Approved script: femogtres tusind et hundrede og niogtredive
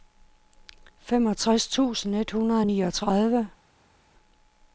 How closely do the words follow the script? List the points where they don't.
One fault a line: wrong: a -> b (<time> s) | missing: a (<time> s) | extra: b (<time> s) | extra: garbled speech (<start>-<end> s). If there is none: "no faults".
no faults